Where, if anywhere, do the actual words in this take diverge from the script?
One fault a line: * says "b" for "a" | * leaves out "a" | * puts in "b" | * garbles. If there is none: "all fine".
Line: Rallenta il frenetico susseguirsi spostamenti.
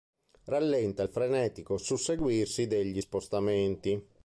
* puts in "degli"